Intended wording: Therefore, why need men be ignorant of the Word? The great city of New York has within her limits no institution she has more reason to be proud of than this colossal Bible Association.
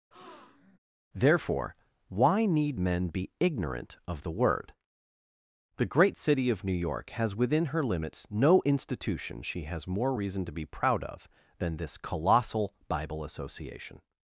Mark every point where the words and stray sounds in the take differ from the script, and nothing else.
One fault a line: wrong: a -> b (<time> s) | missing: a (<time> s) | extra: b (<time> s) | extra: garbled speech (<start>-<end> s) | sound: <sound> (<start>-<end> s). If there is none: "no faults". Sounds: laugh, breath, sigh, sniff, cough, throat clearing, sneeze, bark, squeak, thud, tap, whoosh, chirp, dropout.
sound: breath (0.1-0.8 s)